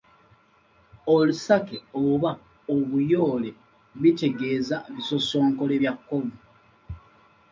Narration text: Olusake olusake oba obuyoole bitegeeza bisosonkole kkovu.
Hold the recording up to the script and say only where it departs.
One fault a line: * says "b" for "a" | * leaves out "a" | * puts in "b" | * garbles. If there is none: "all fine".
* leaves out "olusake"
* puts in "bya"